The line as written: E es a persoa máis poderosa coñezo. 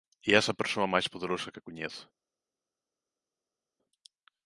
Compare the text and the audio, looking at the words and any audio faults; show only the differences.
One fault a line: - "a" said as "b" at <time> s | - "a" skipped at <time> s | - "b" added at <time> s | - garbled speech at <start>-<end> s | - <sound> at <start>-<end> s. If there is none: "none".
- "que" added at 1.5 s